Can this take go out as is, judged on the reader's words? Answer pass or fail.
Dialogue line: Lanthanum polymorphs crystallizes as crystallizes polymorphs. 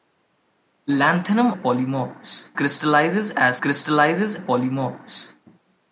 pass